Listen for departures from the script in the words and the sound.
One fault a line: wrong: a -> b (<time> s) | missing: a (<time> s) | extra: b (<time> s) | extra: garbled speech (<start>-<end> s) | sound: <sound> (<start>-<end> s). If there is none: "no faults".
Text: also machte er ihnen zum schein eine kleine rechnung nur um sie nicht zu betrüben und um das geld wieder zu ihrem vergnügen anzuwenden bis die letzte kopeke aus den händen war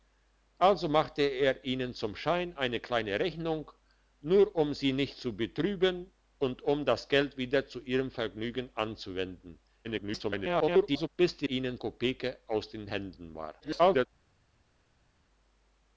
extra: garbled speech (9.8-11.1 s)
wrong: letzte -> ihnen (11.5 s)
extra: garbled speech (13.6-14.1 s)